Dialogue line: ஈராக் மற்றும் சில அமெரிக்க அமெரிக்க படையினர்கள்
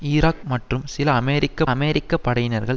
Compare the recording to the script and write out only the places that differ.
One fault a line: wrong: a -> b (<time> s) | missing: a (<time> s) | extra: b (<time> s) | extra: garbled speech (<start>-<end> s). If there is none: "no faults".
no faults